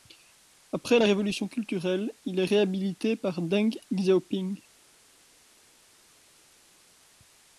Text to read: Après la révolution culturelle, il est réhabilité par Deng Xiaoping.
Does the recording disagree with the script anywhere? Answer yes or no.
no